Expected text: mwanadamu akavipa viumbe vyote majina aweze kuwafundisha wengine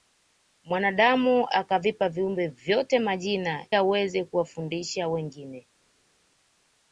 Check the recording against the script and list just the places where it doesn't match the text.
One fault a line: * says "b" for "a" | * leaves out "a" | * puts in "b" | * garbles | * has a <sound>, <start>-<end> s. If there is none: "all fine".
all fine